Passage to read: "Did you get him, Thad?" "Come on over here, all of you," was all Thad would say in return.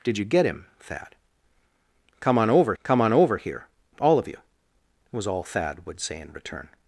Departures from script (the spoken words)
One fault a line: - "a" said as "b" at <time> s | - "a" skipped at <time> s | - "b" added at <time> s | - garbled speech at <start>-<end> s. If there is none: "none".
- "come on over" added at 2.8 s